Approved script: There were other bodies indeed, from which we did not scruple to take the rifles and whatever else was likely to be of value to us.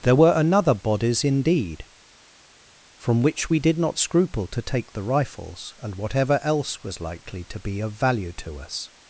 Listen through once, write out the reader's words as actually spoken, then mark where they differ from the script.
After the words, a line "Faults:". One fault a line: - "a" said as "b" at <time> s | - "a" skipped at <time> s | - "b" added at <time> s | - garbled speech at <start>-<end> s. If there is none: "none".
There were another bodies indeed, from which we did not scruple to take the rifles and whatever else was likely to be of value to us.
Faults:
- "other" said as "another" at 0.3 s